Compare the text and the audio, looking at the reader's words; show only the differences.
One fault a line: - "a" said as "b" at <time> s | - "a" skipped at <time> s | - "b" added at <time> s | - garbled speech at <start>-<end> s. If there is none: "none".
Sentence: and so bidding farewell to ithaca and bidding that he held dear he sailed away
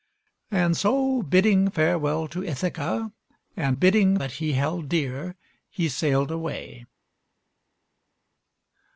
none